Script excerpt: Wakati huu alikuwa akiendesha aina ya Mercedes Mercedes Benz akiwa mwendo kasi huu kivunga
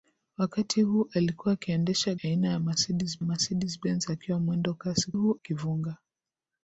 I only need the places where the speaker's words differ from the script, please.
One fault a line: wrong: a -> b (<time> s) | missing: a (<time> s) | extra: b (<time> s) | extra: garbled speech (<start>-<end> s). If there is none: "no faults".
no faults